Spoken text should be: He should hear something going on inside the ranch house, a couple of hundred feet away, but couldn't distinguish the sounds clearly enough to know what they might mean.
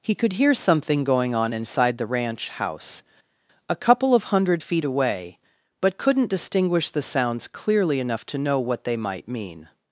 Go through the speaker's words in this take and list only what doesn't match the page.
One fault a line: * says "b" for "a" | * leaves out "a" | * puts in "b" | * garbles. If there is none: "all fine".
* says "could" for "should"